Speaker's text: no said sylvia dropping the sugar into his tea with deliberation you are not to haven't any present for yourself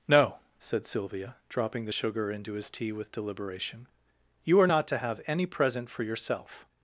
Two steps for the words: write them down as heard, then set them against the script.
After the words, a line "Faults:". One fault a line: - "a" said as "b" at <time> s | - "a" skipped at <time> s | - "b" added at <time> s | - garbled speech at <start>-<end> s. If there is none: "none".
no said sylvia dropping the sugar into his tea with deliberation you are not to have any present for yourself
Faults:
- "haven't" said as "have" at 5.0 s